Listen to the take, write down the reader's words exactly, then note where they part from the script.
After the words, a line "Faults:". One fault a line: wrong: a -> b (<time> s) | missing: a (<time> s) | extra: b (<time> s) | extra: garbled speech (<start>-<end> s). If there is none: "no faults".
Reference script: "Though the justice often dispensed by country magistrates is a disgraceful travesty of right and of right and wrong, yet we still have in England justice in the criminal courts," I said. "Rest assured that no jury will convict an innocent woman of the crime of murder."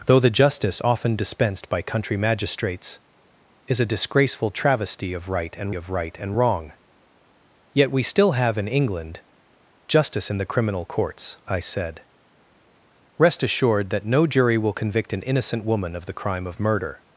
"Though the justice often dispensed by country magistrates is a disgraceful travesty of right and of right and wrong, yet we still have in England justice in the criminal courts," I said. "Rest assured that no jury will convict an innocent woman of the crime of murder."
Faults:
no faults